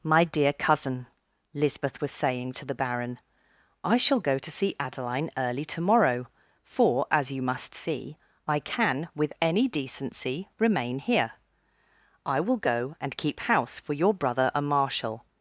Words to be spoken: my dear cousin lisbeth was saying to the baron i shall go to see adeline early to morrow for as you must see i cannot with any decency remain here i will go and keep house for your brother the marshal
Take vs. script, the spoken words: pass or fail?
fail